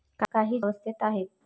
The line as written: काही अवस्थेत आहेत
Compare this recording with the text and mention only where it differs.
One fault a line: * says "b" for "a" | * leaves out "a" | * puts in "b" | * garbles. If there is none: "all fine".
all fine